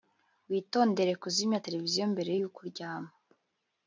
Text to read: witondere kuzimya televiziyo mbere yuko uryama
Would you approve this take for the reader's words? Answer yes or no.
yes